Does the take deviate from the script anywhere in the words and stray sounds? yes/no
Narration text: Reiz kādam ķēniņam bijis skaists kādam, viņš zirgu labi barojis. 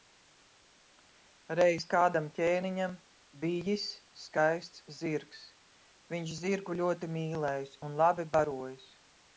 yes